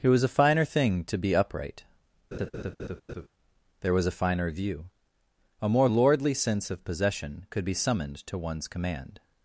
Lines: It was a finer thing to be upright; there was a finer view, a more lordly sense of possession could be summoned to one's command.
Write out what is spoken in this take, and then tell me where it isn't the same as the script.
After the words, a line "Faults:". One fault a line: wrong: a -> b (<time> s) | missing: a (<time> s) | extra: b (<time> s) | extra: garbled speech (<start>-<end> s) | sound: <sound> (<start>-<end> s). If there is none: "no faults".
It was a finer thing to be upright; there was a finer view, a more lordly sense of possession could be summoned to one's command.
Faults:
sound: laugh (2.3-3.3 s)